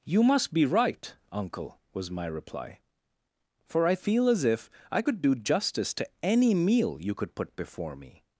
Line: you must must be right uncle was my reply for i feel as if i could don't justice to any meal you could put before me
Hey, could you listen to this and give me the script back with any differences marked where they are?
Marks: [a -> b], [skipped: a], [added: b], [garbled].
you must [skipped: must] be right uncle was my reply for i feel as if i could [don't -> do] justice to any meal you could put before me